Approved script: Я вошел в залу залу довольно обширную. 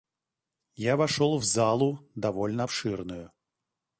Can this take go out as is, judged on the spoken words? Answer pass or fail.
fail